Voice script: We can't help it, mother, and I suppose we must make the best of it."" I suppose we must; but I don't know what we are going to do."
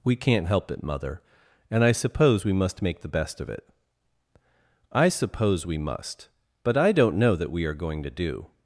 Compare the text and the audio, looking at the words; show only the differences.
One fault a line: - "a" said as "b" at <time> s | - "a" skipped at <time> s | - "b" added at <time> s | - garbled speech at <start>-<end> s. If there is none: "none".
- "what" said as "that" at 7.3 s